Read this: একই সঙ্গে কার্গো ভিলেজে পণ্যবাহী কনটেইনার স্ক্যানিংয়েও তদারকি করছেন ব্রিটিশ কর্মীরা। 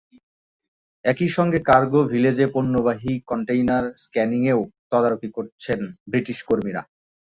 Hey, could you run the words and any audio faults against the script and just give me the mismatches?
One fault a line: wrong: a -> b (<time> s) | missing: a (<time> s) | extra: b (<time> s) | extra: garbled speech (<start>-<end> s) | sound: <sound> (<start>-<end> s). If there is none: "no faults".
no faults